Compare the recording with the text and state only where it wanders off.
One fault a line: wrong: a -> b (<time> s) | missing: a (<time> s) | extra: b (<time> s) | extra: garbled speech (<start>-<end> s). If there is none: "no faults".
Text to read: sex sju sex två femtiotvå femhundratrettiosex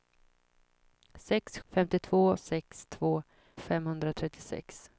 wrong: sju -> femtiotvå (1.6 s)
missing: femtiotvå (3.2 s)